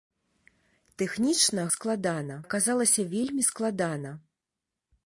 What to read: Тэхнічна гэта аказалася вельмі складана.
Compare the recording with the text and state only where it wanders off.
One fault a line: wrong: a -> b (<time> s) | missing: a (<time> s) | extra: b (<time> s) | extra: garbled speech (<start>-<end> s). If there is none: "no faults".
wrong: гэта -> складана (1.7 s)